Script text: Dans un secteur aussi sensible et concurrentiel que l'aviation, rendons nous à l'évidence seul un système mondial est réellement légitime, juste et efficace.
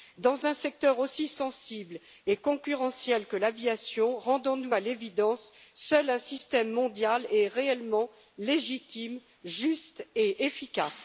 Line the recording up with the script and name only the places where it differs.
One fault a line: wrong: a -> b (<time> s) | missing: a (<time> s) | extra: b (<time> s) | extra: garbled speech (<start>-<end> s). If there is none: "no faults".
no faults